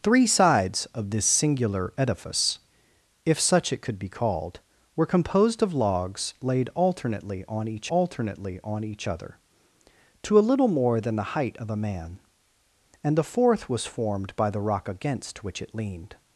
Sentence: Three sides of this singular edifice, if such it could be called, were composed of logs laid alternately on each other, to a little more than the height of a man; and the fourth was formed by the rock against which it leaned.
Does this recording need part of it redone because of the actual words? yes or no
yes